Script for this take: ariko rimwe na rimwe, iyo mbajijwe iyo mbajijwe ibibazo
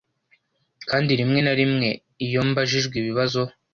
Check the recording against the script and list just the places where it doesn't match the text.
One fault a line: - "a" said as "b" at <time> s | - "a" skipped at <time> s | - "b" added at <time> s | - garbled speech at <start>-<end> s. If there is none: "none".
- "ariko" said as "kandi" at 0.9 s
- "iyo mbajijwe" skipped at 3.0 s